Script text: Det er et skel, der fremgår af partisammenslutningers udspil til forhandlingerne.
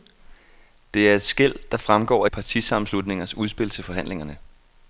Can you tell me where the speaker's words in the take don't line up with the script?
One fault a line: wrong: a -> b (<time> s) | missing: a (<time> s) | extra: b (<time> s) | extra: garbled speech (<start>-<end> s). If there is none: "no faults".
no faults